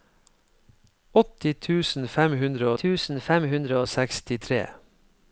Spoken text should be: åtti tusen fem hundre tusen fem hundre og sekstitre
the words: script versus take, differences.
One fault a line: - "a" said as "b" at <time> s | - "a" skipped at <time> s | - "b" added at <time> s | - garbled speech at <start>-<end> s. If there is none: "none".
none